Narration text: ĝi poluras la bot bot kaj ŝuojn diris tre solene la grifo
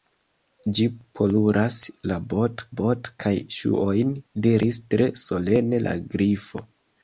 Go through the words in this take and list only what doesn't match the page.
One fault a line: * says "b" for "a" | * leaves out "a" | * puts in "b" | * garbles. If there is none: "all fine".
all fine